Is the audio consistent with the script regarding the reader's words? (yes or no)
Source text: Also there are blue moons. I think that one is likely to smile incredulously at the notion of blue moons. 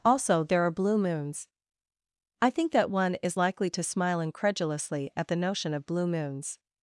yes